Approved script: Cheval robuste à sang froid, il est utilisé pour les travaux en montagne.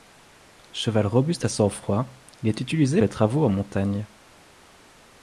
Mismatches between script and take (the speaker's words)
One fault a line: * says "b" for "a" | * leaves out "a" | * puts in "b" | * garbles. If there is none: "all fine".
* leaves out "pour"